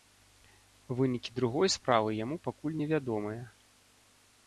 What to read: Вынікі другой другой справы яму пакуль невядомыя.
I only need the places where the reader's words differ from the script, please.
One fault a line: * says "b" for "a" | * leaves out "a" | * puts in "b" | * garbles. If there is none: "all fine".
* leaves out "другой"